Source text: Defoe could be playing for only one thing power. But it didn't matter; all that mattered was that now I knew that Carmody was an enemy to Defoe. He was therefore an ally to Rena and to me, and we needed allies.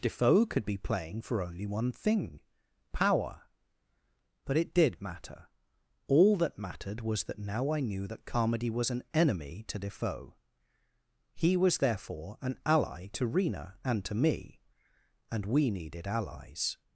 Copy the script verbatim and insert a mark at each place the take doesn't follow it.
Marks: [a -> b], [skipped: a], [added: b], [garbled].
Defoe could be playing for only one thing power. But it [didn't -> did] matter; all that mattered was that now I knew that Carmody was an enemy to Defoe. He was therefore an ally to Rena and to me, and we needed allies.